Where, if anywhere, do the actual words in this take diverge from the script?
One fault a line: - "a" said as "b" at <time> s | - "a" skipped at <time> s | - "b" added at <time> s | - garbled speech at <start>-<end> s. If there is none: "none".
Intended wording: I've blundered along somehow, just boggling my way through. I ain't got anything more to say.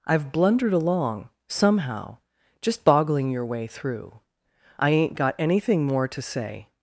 - "my" said as "your" at 3.3 s